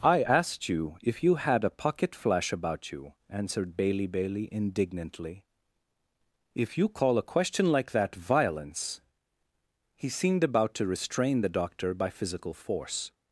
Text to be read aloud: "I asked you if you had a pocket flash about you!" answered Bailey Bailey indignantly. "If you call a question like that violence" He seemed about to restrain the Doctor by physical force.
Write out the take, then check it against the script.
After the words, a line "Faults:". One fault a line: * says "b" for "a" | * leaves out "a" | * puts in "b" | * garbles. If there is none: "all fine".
"I asked you if you had a pocket flash about you!" answered Bailey Bailey indignantly. "If you call a question like that violence" He seemed about to restrain the Doctor by physical force.
Faults:
all fine